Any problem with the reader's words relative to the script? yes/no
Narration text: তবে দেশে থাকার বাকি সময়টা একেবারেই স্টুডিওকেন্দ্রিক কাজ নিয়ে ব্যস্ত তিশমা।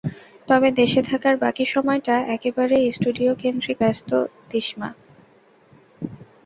yes